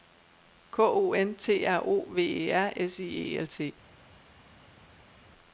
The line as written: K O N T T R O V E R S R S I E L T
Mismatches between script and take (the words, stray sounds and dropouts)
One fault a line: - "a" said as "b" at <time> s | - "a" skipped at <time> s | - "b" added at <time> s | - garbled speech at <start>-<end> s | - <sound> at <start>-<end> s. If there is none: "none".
- "T" skipped at 1.6 s
- "R S" skipped at 3.0 s